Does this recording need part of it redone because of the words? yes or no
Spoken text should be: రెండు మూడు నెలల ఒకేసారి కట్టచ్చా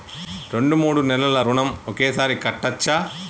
yes